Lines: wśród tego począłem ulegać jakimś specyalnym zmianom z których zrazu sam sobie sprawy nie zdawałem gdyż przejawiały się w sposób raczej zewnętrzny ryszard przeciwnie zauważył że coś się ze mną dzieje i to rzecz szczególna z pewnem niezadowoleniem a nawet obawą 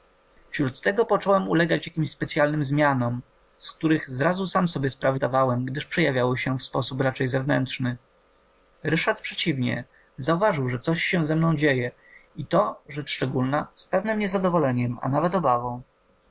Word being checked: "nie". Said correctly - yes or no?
no